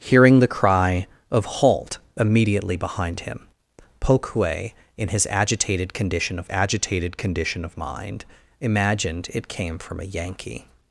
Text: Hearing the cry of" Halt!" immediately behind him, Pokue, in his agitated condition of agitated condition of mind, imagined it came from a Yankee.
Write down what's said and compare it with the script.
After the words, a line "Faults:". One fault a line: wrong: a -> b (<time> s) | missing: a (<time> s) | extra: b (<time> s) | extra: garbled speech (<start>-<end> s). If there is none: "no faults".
Hearing the cry of" Halt!" immediately behind him, Pokue, in his agitated condition of agitated condition of mind, imagined it came from a Yankee.
Faults:
no faults